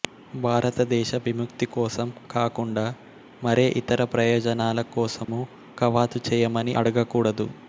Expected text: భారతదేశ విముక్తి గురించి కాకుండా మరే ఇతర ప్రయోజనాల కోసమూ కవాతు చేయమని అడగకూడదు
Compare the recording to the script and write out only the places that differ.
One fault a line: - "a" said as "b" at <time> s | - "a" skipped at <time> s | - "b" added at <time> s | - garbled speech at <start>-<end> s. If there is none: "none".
- "గురించి" said as "కోసం" at 1.7 s